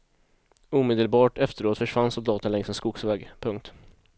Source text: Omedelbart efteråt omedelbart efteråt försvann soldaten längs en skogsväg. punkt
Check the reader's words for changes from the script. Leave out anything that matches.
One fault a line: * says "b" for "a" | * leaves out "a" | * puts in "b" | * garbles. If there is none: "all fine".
* leaves out "omedelbart efteråt"